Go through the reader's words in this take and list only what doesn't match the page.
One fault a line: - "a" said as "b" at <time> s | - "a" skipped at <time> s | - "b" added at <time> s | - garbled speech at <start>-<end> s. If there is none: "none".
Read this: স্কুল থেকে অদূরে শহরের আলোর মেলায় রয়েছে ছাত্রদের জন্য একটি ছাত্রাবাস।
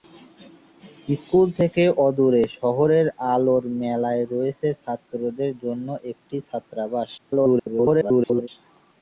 - garbled speech at 7.2-8.5 s